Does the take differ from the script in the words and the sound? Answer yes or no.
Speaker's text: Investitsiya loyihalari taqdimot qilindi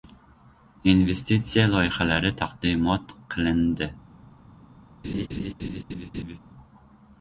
yes